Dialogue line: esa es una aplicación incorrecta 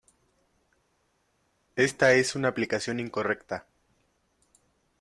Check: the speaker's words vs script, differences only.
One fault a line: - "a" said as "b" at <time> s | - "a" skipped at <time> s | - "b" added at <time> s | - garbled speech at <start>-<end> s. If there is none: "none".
- "esa" said as "esta" at 1.7 s